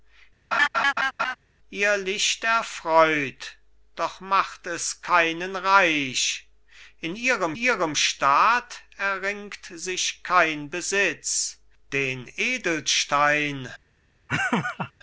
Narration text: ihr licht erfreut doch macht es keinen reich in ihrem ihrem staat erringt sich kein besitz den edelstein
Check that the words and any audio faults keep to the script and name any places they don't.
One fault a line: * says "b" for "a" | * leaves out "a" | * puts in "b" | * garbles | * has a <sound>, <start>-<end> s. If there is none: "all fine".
* has a laugh, 0.5-1.4 s
* has a laugh, 14.3-14.9 s